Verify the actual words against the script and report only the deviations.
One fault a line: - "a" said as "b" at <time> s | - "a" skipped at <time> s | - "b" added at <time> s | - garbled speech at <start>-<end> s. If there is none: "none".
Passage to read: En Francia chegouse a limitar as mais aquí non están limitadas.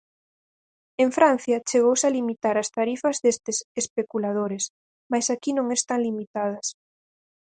- "tarifas destes especuladores" added at 2.8 s